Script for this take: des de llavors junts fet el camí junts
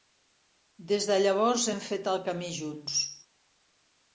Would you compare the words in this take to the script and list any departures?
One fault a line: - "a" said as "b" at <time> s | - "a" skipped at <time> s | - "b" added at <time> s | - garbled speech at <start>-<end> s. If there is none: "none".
- "junts" said as "hem" at 1.7 s